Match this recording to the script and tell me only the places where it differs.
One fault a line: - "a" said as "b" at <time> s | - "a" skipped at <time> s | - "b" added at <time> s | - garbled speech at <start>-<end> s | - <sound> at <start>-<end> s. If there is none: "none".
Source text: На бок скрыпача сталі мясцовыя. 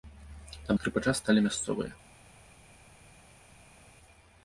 - "бок" skipped at 0.8 s